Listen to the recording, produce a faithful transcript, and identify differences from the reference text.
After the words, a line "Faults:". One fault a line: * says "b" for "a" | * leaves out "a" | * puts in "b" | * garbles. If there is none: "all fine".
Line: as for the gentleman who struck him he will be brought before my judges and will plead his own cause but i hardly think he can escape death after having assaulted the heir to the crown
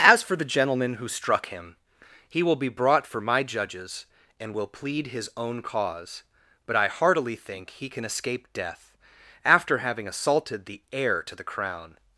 as for the gentleman who struck him he will be brought for my judges and will plead his own cause but i heartily think he can escape death after having assaulted the heir to the crown
Faults:
* says "for" for "before"
* says "heartily" for "hardly"